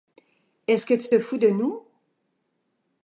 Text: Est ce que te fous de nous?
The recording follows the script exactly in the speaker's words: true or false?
false